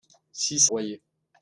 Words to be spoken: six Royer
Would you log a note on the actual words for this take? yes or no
no